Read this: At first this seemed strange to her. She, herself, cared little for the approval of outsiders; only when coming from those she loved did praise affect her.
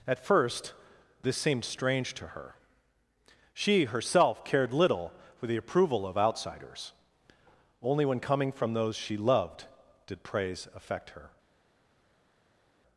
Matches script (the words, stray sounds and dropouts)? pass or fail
pass